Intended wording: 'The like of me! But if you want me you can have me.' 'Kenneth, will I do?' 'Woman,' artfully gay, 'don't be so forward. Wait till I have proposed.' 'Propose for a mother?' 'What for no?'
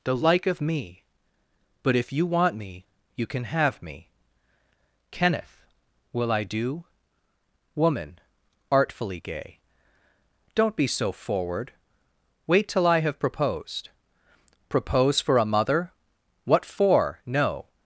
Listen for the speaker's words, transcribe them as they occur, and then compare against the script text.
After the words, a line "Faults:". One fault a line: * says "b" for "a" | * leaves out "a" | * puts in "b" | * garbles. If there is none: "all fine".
'The like of me! But if you want me you can have me.' 'Kenneth, will I do?' 'Woman,' artfully gay, 'don't be so forward. Wait till I have proposed.' 'Propose for a mother?' 'What for no?'
Faults:
all fine